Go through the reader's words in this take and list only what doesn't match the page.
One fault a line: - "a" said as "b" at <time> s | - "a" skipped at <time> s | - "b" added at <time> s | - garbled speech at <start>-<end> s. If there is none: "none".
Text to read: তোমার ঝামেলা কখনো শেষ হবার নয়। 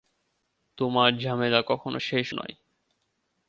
- "হবার" skipped at 2.3 s